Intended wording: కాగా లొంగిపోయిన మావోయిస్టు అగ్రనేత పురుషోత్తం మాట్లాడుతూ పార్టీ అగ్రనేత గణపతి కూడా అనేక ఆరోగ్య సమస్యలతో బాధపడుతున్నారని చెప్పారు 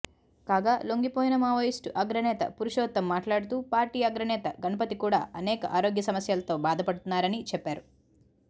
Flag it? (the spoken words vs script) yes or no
no